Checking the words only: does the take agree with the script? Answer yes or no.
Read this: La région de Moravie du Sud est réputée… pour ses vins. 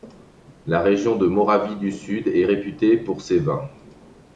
yes